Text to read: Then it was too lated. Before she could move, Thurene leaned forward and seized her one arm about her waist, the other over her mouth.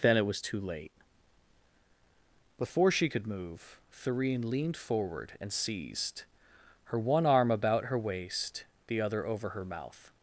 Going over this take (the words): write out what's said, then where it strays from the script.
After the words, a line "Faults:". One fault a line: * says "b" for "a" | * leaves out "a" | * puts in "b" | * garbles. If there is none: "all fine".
Then it was too late. Before she could move, Thurene leaned forward and seized her one arm about her waist, the other over her mouth.
Faults:
* says "late" for "lated"